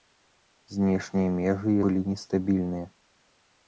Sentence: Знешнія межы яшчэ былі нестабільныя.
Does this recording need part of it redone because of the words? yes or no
yes